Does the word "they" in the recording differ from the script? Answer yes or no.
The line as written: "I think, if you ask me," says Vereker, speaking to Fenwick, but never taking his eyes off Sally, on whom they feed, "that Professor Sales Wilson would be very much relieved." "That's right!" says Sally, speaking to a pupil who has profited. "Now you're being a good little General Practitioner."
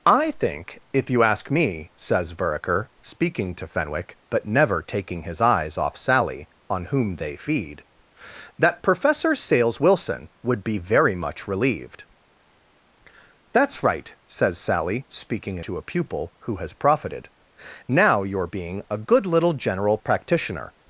no